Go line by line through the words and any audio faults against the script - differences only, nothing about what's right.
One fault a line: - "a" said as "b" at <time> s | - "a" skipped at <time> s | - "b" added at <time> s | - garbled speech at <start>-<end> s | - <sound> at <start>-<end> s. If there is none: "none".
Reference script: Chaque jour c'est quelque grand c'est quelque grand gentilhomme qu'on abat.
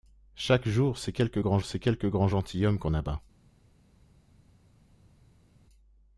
none